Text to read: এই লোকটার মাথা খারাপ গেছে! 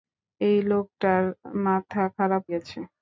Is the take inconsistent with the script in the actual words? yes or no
no